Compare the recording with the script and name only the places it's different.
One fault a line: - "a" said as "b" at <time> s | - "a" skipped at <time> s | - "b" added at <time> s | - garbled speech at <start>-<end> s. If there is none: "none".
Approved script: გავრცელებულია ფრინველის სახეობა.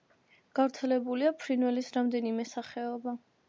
- "რამდენიმე" added at 2.0 s